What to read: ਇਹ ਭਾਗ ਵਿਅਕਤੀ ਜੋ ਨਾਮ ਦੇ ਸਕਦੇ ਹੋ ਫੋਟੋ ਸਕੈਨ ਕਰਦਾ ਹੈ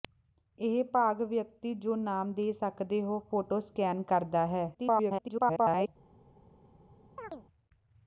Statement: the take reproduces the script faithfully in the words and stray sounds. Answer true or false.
false